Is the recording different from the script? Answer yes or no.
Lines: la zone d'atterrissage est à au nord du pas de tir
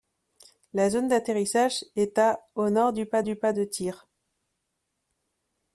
yes